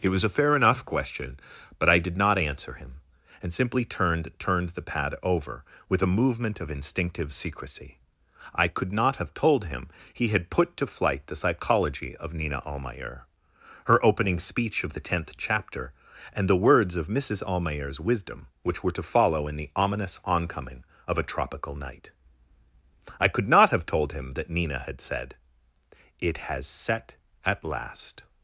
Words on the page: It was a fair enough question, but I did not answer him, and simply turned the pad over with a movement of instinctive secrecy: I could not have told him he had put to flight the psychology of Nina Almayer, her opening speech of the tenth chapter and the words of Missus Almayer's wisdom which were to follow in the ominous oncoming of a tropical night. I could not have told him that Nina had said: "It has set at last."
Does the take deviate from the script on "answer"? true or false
false